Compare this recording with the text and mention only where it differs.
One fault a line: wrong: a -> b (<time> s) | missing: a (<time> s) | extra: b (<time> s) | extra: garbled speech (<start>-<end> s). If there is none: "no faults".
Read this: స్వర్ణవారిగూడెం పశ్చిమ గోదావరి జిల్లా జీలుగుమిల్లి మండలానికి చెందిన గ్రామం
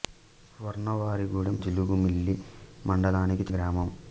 missing: పశ్చిమ గోదావరి జిల్లా (1.6 s)
missing: చెందిన (3.5 s)